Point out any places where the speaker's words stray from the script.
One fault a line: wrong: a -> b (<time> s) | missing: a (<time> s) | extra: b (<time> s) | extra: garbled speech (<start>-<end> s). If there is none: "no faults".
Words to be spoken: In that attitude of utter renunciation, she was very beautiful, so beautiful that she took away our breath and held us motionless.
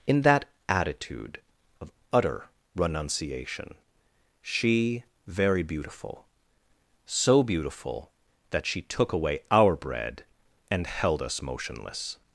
missing: was (5.0 s)
wrong: breath -> bread (9.7 s)